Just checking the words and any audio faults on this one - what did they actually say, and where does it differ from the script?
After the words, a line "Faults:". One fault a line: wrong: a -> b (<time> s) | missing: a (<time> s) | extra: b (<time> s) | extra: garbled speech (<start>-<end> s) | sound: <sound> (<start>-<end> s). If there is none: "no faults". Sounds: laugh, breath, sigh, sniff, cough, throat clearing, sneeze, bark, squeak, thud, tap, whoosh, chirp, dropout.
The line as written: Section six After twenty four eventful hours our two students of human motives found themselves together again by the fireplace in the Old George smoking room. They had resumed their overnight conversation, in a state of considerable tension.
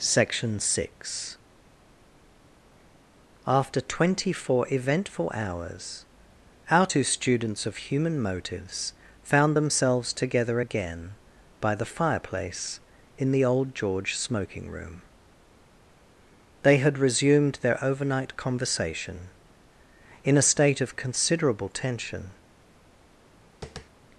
Section six After twenty four eventful hours our two students of human motives found themselves together again by the fireplace in the Old George smoking room. They had resumed their overnight conversation, in a state of considerable tension.
Faults:
sound: tap (23.6-23.9 s)